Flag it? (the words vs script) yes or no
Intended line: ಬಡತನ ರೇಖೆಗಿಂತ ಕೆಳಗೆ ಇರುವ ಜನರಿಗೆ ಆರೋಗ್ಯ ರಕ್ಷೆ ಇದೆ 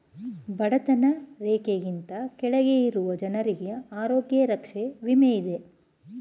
yes